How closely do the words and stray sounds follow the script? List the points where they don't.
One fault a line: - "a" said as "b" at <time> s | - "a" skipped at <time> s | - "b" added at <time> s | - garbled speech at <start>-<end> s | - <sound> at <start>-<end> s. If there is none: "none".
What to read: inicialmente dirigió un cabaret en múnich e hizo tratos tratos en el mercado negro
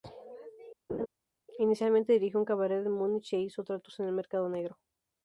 - laugh at 0.9-1.1 s
- "tratos" skipped at 4.0 s